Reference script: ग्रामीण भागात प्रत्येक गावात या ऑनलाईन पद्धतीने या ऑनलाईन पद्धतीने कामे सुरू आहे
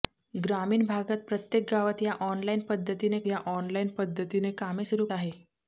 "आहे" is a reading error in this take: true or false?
false